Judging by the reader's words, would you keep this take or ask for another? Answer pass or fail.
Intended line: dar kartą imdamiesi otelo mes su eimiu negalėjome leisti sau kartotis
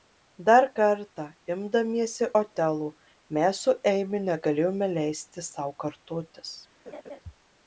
pass